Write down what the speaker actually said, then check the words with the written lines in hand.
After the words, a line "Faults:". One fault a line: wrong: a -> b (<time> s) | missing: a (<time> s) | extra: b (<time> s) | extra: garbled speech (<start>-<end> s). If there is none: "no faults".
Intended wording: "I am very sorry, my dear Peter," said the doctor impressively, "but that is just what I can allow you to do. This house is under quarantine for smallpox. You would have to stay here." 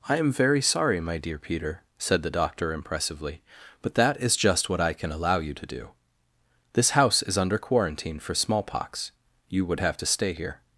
"I am very sorry, my dear Peter," said the doctor impressively, "but that is just what I can allow you to do. This house is under quarantine for smallpox. You would have to stay here."
Faults:
no faults